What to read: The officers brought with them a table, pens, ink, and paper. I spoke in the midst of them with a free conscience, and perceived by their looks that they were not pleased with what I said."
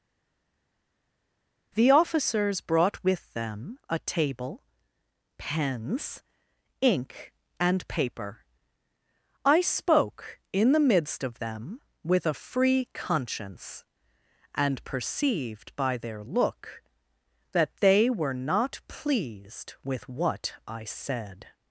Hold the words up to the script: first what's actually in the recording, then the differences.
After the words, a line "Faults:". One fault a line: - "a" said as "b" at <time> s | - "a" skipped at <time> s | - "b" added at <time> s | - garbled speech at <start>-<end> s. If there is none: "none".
The officers brought with them a table, pens, ink, and paper. I spoke in the midst of them with a free conscience, and perceived by their look that they were not pleased with what I said."
Faults:
- "looks" said as "look" at 16.2 s